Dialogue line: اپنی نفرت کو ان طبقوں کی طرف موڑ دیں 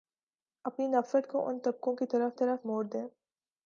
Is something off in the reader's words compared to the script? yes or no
yes